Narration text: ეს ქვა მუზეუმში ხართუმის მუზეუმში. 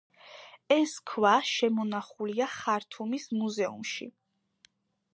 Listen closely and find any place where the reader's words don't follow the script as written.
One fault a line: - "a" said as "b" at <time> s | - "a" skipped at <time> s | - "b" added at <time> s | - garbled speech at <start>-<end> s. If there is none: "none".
- "მუზეუმში" said as "შემონახულია" at 1.5 s